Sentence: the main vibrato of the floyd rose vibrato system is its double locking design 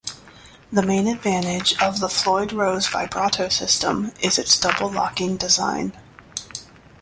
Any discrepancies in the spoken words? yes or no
yes